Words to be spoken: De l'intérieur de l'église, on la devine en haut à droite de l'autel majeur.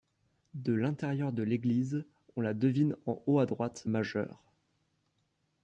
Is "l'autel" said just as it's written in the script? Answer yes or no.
no